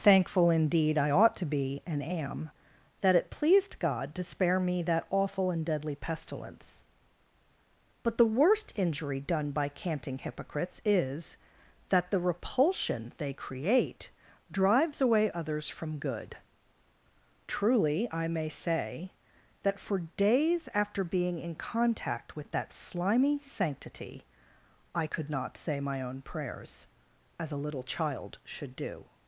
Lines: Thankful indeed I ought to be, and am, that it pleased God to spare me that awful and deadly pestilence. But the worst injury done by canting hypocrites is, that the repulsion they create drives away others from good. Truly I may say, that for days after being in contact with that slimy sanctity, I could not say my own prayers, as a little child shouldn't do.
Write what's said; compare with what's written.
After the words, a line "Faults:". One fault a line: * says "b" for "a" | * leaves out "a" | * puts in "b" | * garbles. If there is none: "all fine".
Thankful indeed I ought to be, and am, that it pleased God to spare me that awful and deadly pestilence. But the worst injury done by canting hypocrites is, that the repulsion they create drives away others from good. Truly I may say, that for days after being in contact with that slimy sanctity, I could not say my own prayers, as a little child should do.
Faults:
* says "should" for "shouldn't"